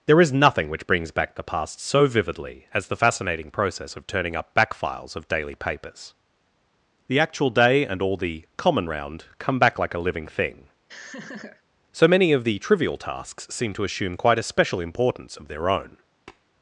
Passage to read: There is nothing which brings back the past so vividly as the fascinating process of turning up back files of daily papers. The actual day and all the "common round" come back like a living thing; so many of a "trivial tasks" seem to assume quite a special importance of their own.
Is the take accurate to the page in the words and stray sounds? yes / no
no